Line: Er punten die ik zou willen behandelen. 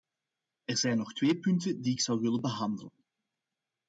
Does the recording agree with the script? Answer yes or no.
no